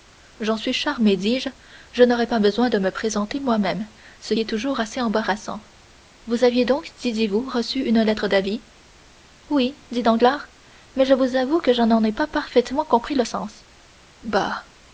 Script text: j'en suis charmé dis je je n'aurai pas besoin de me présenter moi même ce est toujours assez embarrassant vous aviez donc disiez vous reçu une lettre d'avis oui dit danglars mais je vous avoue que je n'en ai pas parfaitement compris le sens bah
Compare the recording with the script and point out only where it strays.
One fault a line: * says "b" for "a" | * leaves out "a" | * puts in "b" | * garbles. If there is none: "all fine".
all fine